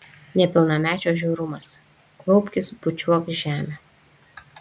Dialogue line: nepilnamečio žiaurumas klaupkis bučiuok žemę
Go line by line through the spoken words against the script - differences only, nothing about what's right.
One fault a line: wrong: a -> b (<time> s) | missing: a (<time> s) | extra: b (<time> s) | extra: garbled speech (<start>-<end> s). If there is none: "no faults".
no faults